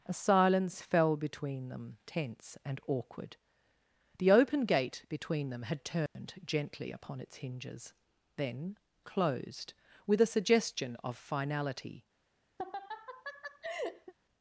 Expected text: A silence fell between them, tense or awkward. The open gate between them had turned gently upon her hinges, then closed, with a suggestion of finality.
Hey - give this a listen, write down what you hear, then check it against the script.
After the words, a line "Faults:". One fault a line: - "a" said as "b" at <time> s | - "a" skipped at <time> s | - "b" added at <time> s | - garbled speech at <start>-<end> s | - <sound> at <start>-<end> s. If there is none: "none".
A silence fell between them, tense and awkward. The open gate between them had turned gently upon its hinges, then closed, with a suggestion of finality.
Faults:
- "or" said as "and" at 2.6 s
- dropout at 6.1-6.2 s
- "her" said as "its" at 7.2 s
- laugh at 12.6-14.1 s